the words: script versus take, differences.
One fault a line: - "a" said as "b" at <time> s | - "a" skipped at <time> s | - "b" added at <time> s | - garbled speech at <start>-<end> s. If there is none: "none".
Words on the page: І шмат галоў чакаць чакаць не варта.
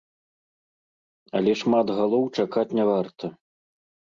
- "І" said as "Але" at 1.4 s
- "чакаць" skipped at 2.7 s